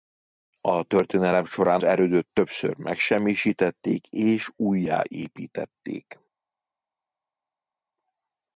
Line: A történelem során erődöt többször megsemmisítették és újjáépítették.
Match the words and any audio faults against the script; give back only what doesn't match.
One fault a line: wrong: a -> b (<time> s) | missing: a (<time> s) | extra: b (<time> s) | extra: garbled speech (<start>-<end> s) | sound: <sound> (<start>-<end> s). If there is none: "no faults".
no faults